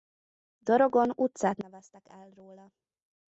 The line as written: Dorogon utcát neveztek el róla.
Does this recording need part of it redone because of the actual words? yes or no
no